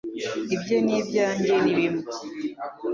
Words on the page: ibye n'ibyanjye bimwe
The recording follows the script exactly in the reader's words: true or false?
false